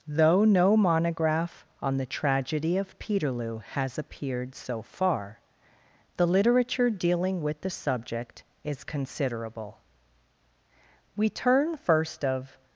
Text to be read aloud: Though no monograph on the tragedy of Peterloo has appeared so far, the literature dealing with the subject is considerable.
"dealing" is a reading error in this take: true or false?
false